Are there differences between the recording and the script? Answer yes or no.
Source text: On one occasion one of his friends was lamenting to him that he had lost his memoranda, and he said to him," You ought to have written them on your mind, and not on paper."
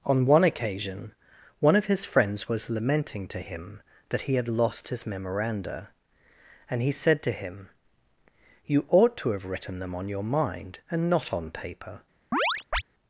no